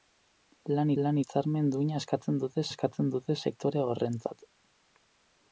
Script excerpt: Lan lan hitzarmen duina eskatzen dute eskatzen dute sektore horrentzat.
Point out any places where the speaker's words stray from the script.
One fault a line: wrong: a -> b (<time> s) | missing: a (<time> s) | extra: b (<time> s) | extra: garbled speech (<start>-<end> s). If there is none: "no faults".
no faults